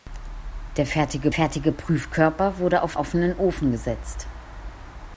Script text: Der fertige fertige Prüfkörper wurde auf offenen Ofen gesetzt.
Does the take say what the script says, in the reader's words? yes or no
yes